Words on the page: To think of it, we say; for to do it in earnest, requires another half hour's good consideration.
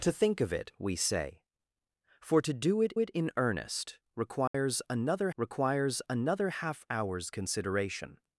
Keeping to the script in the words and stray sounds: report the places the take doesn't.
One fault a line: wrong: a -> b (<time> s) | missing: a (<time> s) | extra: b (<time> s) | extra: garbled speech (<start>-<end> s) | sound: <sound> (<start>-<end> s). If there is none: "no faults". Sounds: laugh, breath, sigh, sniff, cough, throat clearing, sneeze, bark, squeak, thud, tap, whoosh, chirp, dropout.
extra: it (3.0 s)
sound: dropout (4.5-4.5 s)
extra: requires another (5.4 s)
missing: good (7.3 s)